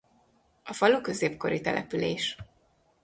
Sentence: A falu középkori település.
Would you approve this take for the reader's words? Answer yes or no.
yes